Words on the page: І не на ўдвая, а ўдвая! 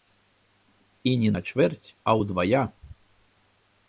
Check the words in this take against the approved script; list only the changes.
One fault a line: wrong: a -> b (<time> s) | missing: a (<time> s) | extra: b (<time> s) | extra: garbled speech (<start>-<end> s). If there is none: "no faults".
wrong: ўдвая -> чвэрць (1.5 s)